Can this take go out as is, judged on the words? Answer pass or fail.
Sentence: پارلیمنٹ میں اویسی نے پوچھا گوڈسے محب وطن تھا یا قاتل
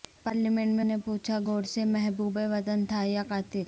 fail